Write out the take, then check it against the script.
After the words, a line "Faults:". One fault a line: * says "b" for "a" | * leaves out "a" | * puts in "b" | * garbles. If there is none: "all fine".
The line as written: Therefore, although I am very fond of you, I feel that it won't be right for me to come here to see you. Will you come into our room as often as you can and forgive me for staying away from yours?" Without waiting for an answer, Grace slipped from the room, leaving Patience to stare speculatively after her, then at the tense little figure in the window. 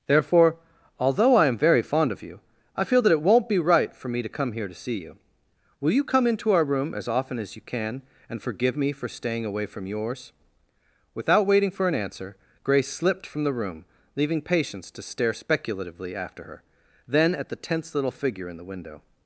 Therefore, although I am very fond of you, I feel that it won't be right for me to come here to see you. Will you come into our room as often as you can and forgive me for staying away from yours?" Without waiting for an answer, Grace slipped from the room, leaving Patience to stare speculatively after her, then at the tense little figure in the window.
Faults:
all fine